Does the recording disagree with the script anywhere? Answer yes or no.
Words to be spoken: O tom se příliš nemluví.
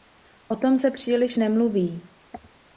no